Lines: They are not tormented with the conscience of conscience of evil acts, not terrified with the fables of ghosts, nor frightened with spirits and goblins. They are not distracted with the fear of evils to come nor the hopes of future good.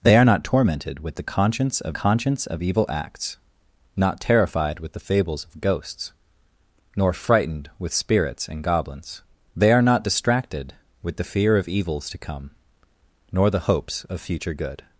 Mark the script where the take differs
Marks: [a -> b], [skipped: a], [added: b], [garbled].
They are not tormented with the conscience of conscience of evil acts, not terrified with the fables of ghosts, nor frightened with spirits and goblins. They are not distracted with the fear of evils to come nor the hopes of future good.